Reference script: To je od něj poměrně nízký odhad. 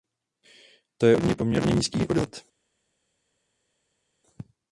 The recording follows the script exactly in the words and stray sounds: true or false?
true